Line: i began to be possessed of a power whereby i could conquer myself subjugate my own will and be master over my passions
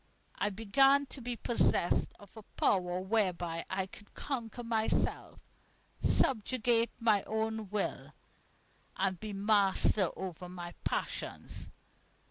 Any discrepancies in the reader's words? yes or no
no